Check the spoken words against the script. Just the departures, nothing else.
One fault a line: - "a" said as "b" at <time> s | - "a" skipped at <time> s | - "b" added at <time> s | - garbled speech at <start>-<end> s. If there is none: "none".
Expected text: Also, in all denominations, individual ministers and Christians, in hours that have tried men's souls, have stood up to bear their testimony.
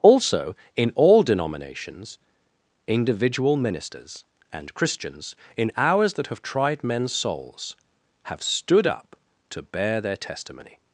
none